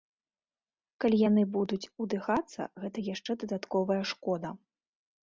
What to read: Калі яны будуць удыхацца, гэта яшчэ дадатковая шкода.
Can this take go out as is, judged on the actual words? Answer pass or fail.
pass